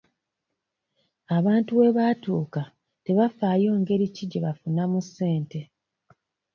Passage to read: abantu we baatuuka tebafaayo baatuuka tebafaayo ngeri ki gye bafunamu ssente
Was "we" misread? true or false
false